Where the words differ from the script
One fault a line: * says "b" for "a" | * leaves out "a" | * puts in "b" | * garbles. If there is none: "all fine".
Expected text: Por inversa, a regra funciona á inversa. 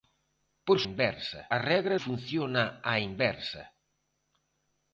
all fine